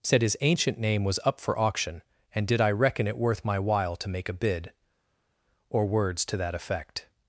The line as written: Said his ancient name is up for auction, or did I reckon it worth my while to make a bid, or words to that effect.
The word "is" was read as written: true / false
false